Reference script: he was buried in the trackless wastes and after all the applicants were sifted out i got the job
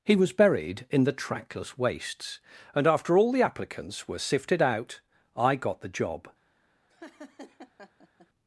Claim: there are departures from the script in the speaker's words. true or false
false